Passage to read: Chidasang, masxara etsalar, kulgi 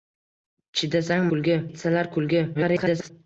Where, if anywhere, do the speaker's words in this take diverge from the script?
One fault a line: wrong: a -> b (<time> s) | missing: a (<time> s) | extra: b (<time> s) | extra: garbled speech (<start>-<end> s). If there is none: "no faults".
wrong: masxara -> kulgi (1.3 s)
extra: garbled speech (2.5-3.1 s)